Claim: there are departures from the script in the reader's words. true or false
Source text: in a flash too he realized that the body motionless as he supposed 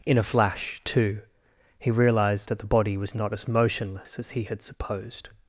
true